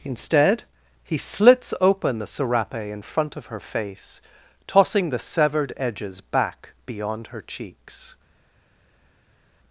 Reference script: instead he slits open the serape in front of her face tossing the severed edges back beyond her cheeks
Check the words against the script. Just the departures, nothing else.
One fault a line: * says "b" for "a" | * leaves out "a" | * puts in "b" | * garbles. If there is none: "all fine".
all fine